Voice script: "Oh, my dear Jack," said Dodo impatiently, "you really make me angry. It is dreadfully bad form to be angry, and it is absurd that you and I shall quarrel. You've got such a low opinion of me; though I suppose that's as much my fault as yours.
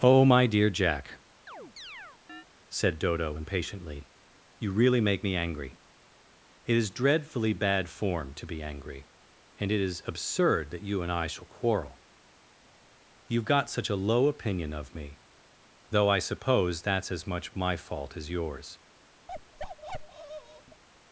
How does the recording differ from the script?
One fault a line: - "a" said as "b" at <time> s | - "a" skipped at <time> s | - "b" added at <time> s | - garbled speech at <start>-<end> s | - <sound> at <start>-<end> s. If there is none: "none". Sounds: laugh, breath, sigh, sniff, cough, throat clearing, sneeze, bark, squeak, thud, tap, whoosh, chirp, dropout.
- chirp at 1.5-2.5 s
- bark at 19.3-20.8 s